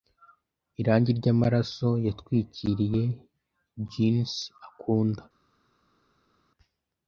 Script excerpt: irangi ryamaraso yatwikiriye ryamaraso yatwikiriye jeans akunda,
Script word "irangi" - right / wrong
right